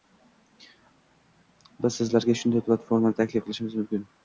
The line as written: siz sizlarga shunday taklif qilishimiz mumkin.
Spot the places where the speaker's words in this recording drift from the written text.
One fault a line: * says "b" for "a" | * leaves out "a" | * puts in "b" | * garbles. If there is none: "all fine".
* says "biz" for "siz"
* puts in "platformani"